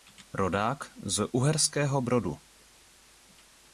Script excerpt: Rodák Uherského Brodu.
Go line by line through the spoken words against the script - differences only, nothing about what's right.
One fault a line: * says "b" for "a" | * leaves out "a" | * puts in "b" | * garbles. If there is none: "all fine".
* puts in "z"